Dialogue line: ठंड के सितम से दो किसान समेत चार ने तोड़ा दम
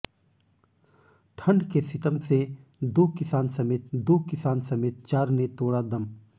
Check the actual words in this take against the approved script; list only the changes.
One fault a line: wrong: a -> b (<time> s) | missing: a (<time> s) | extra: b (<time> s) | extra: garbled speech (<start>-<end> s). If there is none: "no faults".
extra: दो किसान समेत (3.9 s)